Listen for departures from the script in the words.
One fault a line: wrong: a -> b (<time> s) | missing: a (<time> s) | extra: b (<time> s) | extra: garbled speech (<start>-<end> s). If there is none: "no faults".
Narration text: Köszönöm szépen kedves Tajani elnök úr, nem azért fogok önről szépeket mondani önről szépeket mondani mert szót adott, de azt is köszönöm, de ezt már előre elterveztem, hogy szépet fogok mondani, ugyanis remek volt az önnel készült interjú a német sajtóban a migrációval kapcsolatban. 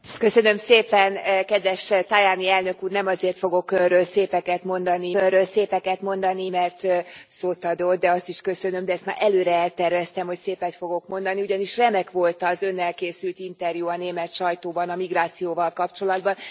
no faults